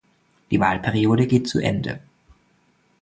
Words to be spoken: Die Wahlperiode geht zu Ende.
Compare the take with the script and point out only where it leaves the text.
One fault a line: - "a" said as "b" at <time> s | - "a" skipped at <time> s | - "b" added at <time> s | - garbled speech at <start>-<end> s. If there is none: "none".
none